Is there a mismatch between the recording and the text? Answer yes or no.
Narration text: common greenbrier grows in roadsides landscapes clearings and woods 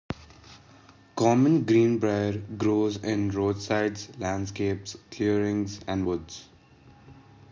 no